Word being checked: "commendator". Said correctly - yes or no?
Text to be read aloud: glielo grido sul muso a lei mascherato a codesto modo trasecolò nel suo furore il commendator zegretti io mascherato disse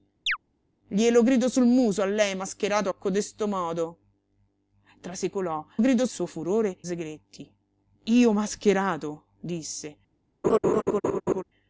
no